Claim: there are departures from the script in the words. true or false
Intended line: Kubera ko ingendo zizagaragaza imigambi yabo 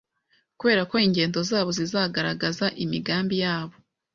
true